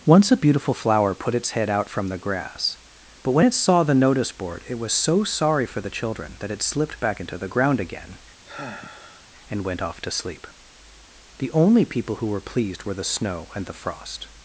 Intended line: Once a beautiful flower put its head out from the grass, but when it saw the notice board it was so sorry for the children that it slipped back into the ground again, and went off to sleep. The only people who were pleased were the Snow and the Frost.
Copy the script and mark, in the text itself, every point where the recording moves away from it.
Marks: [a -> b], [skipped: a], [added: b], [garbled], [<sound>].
Once a beautiful flower put its head out from the grass, but when it saw the notice board it was so sorry for the children that it slipped back into the ground again, [sigh] and went off to sleep. The only people who were pleased were the Snow and the Frost.